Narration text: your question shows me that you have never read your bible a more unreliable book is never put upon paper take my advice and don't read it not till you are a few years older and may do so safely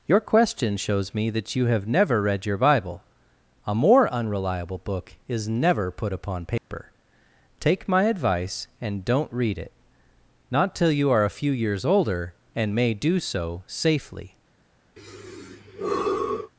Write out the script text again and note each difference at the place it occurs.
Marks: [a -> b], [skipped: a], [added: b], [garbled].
your question shows me that you have never read your bible a more unreliable book is never put upon paper take my advice and don't read it not till you are a few years older and may do so safely